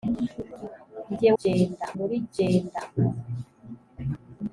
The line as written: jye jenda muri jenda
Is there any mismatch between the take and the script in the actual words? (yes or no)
no